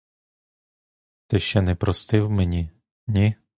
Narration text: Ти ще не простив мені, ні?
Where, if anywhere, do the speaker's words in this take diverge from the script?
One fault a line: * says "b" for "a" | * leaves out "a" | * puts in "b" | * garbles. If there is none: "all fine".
all fine